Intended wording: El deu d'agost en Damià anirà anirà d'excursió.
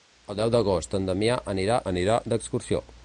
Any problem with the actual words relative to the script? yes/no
no